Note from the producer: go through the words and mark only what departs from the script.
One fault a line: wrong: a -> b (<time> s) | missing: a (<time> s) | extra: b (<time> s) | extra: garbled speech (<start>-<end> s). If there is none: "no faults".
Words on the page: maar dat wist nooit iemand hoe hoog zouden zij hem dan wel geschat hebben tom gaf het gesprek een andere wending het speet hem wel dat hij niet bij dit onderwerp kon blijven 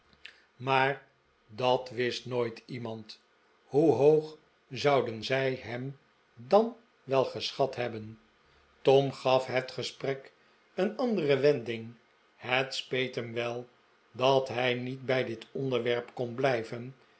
no faults